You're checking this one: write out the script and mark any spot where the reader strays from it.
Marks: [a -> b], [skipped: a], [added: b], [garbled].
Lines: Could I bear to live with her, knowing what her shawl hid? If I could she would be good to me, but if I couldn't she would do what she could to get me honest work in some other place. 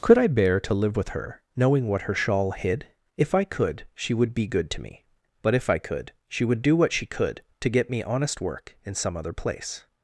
Could I bear to live with her, knowing what her shawl hid? If I could she would be good to me, but if I [couldn't -> could] she would do what she could to get me honest work in some other place.